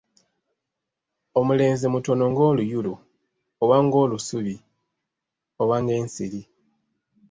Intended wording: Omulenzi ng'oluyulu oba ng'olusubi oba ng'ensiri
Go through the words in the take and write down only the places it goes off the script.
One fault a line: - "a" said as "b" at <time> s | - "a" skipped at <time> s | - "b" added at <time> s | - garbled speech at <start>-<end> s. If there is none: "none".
- "mutono" added at 1.9 s